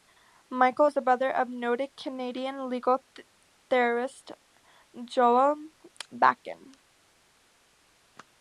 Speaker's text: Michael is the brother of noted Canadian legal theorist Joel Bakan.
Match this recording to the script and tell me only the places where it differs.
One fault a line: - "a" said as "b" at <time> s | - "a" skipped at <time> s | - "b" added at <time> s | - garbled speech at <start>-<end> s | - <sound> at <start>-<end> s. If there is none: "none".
none